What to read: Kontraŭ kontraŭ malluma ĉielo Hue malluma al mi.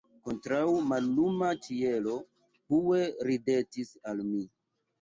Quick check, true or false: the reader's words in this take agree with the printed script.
false